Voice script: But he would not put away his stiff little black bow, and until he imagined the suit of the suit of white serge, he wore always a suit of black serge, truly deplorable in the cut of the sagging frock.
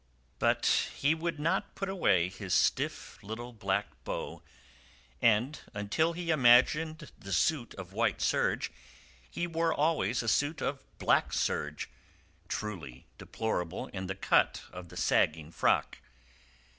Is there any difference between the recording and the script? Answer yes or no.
yes